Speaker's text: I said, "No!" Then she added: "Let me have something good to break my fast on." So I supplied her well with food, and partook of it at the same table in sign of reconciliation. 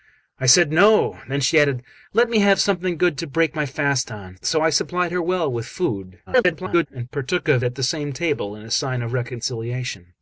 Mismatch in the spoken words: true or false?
true